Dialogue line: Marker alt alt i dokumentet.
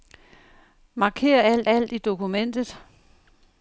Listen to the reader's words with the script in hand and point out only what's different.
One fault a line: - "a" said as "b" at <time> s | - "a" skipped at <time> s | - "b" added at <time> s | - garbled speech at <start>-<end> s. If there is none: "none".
none